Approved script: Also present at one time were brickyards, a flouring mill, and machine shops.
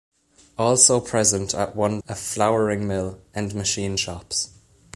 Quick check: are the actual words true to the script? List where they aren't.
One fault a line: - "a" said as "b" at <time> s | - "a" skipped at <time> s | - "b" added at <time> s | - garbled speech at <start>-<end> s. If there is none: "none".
- "time were brickyards" skipped at 2.0 s